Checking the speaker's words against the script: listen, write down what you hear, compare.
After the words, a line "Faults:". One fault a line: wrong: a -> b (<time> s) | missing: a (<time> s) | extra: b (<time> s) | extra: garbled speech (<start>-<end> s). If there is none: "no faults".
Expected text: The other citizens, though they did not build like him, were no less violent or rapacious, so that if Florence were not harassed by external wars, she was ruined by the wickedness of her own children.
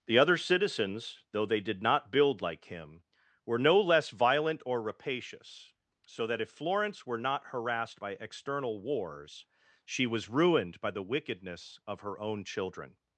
The other citizens, though they did not build like him, were no less violent or rapacious, so that if Florence were not harassed by external wars, she was ruined by the wickedness of her own children.
Faults:
no faults